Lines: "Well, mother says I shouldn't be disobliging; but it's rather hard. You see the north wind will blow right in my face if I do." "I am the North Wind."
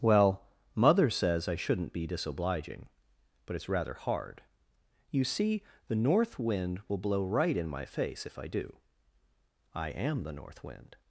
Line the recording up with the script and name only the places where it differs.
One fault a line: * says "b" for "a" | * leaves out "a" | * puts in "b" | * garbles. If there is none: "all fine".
all fine